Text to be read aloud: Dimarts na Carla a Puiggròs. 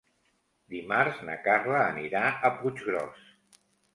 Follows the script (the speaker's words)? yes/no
no